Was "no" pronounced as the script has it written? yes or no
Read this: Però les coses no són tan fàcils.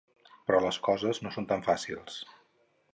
yes